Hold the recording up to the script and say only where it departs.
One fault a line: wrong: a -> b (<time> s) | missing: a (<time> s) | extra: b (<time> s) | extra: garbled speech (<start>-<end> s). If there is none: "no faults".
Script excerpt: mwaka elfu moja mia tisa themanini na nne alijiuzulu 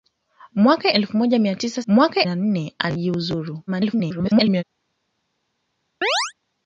wrong: themanini -> mwaka (1.9 s)
extra: garbled speech (3.7-4.6 s)